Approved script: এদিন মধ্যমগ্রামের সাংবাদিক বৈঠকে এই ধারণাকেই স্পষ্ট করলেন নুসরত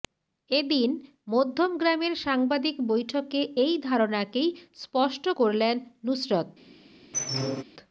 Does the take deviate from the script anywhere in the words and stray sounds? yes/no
yes